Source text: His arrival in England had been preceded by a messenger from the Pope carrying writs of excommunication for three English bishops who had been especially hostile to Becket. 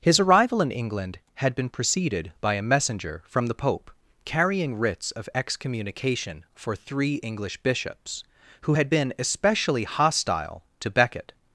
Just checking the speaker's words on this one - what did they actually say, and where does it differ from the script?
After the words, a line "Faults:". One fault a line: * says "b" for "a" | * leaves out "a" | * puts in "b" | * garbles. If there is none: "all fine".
His arrival in England had been preceded by a messenger from the Pope carrying writs of excommunication for three English bishops who had been especially hostile to Becket.
Faults:
all fine